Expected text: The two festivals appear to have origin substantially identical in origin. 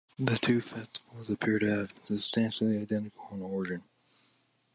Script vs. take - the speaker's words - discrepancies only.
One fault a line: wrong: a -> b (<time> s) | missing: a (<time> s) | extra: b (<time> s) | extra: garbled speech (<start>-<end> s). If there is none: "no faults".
wrong: origin -> been (1.9 s)